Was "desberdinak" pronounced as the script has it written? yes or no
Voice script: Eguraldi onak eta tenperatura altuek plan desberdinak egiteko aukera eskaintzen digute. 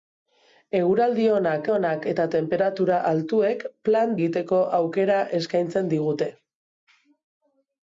no